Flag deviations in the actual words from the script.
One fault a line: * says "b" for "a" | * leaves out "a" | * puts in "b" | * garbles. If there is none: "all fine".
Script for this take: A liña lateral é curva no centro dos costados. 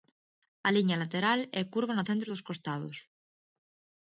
all fine